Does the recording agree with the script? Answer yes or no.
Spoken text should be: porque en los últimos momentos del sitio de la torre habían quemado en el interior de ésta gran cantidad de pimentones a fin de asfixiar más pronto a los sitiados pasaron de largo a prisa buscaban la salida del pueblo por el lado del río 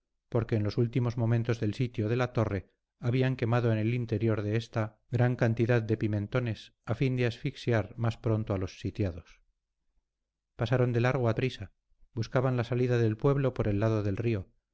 yes